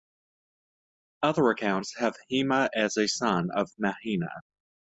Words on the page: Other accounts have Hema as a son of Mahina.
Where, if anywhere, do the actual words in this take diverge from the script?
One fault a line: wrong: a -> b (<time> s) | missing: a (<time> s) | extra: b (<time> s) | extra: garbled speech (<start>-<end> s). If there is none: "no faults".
no faults